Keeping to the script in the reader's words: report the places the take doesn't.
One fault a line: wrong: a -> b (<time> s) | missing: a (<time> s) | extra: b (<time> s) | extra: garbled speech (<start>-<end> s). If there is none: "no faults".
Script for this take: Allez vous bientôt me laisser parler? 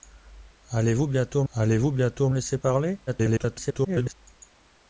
extra: allez vous bientôt (1.5 s)
extra: garbled speech (3.1-4.1 s)